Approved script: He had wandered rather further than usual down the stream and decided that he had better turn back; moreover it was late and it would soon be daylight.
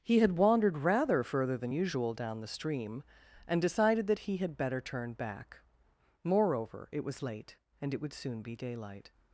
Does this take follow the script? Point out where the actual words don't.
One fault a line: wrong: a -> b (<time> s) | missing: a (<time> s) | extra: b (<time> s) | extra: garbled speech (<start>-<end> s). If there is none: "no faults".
no faults